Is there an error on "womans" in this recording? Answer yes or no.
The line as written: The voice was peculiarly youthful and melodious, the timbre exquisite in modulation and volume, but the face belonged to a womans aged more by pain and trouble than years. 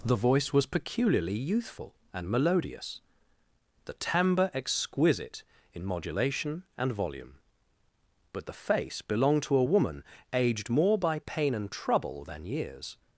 yes